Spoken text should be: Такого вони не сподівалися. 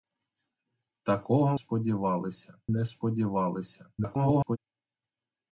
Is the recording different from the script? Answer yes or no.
yes